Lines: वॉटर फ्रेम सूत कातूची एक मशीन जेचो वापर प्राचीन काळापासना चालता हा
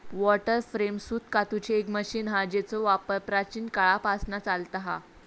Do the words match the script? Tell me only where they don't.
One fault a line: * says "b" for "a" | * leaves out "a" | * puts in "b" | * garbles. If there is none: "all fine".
* puts in "हा"